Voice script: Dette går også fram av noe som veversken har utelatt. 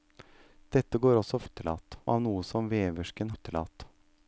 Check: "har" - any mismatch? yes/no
yes